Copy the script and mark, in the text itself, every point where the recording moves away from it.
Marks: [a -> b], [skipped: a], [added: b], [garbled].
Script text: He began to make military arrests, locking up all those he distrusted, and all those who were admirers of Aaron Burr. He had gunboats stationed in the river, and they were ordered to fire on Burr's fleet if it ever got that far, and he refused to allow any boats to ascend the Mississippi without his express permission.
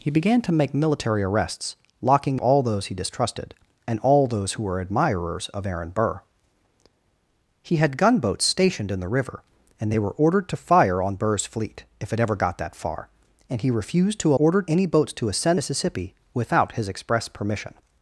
He began to make military arrests, locking [skipped: up] all those he distrusted, and all those who were admirers of Aaron Burr. He had gunboats stationed in the river, and they were ordered to fire on Burr's fleet if it ever got that far, and he refused to [allow -> ordered] any boats to ascend [skipped: the] Mississippi without his express permission.